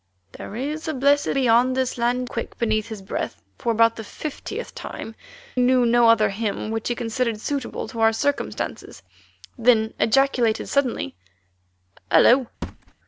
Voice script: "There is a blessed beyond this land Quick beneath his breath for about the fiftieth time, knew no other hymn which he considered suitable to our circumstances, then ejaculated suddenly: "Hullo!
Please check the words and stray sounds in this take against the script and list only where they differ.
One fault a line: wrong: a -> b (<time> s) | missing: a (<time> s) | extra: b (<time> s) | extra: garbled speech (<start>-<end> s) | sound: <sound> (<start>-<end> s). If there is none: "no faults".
sound: thud (12.6-12.9 s)